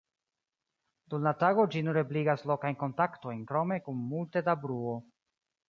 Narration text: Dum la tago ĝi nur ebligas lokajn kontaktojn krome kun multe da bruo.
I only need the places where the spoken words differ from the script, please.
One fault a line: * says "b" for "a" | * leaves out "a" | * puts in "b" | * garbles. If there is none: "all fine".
all fine